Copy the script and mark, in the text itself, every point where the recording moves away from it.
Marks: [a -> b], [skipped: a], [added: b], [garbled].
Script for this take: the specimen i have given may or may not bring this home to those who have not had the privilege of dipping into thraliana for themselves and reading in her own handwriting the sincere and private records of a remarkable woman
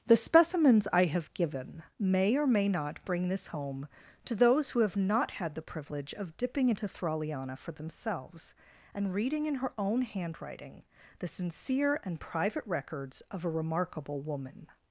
the [specimen -> specimens] i have given may or may not bring this home to those who have not had the privilege of dipping into thraliana for themselves and reading in her own handwriting the sincere and private records of a remarkable woman